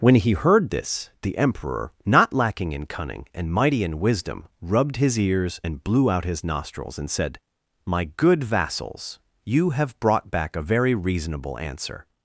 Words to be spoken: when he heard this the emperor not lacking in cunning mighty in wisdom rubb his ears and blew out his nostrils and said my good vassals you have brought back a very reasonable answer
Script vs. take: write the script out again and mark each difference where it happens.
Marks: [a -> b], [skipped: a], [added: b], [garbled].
when he heard this the emperor not lacking in cunning [added: and] mighty in wisdom [rubb -> rubbed] his ears and blew out his nostrils and said my good vassals you have brought back a very reasonable answer